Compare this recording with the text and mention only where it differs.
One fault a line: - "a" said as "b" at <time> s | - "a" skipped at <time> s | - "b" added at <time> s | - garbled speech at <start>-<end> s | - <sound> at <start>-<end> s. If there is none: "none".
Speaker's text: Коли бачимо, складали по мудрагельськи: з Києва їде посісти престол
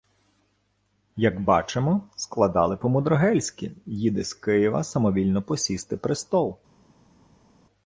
- "Коли" said as "Як" at 1.1 s
- "їде" added at 3.9 s
- "їде" said as "самовільно" at 4.8 s